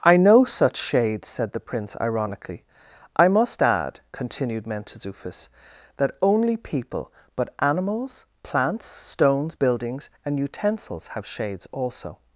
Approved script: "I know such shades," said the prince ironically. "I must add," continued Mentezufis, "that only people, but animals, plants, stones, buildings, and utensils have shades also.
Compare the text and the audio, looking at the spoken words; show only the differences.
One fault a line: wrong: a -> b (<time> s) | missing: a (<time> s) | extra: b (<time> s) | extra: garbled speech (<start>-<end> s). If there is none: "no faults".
no faults